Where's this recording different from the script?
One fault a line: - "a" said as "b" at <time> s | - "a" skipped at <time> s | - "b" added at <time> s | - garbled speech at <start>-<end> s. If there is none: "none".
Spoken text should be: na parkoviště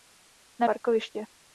none